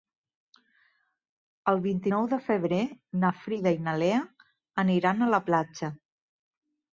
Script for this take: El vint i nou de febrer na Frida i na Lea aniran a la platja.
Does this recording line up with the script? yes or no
yes